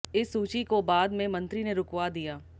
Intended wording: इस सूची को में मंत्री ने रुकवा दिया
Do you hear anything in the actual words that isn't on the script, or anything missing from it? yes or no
yes